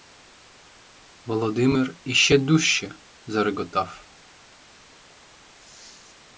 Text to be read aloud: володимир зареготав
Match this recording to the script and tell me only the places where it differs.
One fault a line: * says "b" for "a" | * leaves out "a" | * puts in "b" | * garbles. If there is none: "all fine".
* puts in "іще дужче"